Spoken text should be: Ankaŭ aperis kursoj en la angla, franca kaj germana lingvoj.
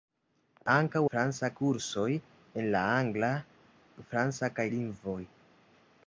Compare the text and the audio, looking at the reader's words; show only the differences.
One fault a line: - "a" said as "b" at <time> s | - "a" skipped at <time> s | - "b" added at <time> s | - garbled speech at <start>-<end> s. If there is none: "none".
- "aperis" said as "franca" at 1.1 s
- "germana" skipped at 4.7 s